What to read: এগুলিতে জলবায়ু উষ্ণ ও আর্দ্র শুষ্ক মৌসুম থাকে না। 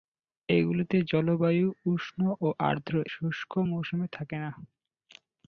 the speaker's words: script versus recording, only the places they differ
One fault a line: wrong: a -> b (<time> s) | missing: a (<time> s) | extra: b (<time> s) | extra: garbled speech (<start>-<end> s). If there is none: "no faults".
no faults